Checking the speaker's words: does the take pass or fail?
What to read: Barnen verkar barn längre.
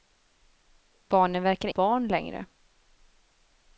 pass